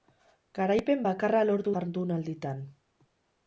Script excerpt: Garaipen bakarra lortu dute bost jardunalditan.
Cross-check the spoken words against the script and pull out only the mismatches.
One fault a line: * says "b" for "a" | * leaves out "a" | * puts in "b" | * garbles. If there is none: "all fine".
* leaves out "dute bost"